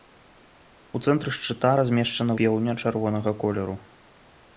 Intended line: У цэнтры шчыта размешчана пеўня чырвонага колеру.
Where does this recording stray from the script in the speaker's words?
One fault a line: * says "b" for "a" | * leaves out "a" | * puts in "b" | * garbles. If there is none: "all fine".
all fine